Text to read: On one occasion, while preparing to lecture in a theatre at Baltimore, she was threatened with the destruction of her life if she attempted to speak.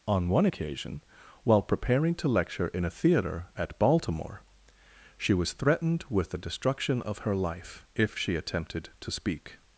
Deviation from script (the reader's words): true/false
false